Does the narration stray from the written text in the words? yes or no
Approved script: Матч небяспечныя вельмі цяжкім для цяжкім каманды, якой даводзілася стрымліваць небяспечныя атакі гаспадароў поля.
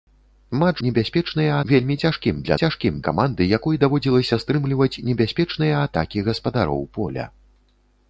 no